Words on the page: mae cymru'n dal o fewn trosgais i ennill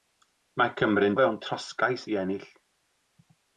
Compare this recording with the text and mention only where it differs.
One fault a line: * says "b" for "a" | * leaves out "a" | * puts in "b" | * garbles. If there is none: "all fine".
* leaves out "dal"